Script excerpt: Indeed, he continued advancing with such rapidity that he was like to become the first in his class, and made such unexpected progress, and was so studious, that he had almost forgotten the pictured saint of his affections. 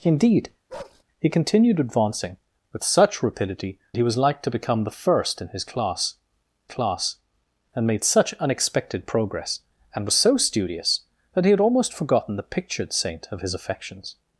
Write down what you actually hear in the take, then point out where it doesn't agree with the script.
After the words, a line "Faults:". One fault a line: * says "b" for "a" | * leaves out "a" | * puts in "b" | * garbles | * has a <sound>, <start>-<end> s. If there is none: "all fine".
Indeed, he continued advancing with such rapidity he was like to become the first in his class class, and made such unexpected progress, and was so studious, that he had almost forgotten the pictured saint of his affections.
Faults:
* has a bark, 0.7-1.0 s
* leaves out "that"
* puts in "class"